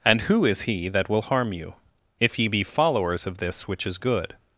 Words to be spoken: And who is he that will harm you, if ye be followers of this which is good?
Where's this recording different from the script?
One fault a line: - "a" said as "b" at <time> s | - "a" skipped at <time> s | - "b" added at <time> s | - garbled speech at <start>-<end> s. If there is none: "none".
none